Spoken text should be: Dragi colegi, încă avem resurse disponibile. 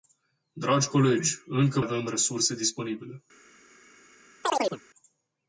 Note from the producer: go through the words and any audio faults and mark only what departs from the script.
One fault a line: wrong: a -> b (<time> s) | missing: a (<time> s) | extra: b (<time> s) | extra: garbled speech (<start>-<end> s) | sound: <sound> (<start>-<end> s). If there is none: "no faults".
sound: chirp (4.4-4.8 s)